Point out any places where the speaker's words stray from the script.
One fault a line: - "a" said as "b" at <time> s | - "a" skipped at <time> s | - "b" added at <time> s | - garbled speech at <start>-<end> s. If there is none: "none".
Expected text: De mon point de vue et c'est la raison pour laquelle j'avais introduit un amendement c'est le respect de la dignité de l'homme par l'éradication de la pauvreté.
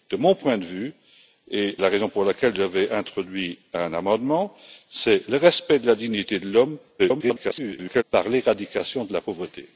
- "c'est" skipped at 1.8 s
- garbled speech at 7.0-8.0 s